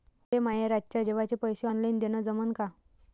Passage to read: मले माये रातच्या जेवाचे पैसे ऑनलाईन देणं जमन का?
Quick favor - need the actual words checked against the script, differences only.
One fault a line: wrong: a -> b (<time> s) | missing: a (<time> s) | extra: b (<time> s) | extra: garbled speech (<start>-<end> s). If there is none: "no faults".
no faults